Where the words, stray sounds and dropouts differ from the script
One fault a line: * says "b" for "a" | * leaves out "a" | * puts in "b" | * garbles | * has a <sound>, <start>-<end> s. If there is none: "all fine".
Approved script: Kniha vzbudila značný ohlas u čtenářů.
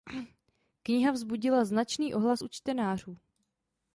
all fine